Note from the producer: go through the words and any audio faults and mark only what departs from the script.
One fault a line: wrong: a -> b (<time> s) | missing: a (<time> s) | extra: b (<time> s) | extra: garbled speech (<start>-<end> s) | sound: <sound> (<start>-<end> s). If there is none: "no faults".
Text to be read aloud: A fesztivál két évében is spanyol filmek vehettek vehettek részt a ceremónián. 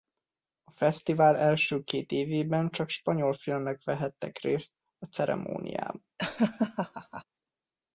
extra: első (1.4 s)
wrong: is -> csak (2.7 s)
missing: vehettek (4.4 s)
sound: laugh (6.2-7.2 s)